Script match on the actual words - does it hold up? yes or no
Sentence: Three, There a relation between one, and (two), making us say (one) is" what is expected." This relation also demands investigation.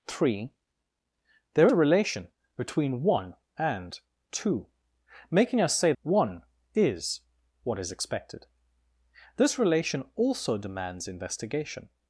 yes